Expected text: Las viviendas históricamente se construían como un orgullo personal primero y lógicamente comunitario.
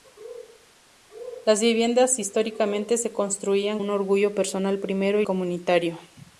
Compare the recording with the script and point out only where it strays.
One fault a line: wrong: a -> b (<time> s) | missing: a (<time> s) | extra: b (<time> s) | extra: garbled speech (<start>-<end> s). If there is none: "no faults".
missing: como (3.8 s)
missing: lógicamente (5.3 s)